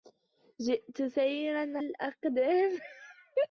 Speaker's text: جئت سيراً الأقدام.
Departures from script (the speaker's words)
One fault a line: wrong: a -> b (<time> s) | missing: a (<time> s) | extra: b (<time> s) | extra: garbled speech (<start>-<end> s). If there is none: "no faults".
no faults